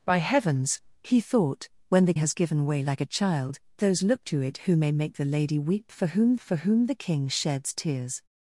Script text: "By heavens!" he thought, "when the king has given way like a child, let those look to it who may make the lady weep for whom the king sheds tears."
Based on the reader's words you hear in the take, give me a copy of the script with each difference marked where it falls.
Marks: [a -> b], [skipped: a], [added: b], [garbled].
"By heavens!" he thought, "when the [skipped: king] has given way like a child, [skipped: let] those look to it who may make the lady weep for whom [added: for whom] the king sheds tears."